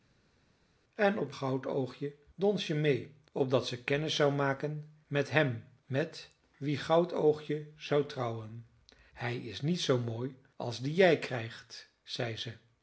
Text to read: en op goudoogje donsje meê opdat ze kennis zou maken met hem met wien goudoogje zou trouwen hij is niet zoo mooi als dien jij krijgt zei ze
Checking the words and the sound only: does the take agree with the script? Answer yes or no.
yes